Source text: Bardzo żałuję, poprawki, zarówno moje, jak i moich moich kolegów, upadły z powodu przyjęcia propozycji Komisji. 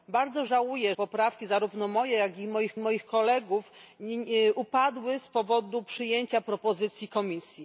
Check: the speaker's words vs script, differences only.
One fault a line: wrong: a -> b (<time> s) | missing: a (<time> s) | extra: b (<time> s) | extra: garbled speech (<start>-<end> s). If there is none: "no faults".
no faults